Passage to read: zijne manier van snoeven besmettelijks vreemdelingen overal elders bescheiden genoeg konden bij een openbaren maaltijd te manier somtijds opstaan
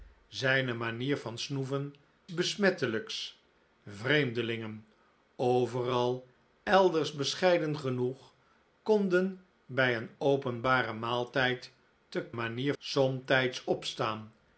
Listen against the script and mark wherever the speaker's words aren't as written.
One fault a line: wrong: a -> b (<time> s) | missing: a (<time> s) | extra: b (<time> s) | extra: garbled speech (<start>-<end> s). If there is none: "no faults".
no faults